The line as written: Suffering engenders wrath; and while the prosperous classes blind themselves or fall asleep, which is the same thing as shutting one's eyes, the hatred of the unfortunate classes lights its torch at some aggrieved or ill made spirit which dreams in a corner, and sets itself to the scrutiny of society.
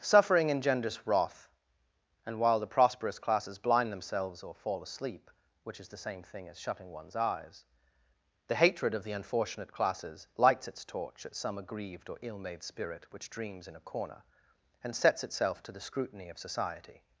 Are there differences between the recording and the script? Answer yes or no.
no